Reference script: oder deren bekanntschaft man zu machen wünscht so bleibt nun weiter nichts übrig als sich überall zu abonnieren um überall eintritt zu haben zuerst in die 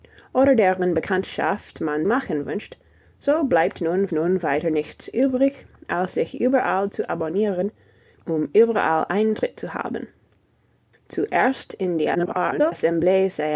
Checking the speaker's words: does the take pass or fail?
fail